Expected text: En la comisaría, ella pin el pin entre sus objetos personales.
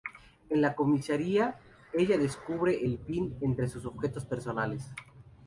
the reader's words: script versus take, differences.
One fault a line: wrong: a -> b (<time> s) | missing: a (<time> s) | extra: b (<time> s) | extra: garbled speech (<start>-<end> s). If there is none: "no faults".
wrong: pin -> descubre (2.2 s)